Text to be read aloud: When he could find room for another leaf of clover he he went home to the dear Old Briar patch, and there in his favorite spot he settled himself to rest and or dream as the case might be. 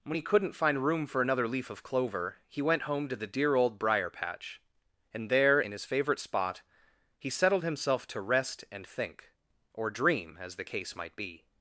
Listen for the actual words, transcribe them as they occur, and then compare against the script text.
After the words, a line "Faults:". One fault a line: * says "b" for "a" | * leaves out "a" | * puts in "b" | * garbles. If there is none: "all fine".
When he couldn't find room for another leaf of clover he went home to the dear Old Briar patch, and there in his favorite spot he settled himself to rest and think or dream as the case might be.
Faults:
* says "couldn't" for "could"
* leaves out "he"
* puts in "think"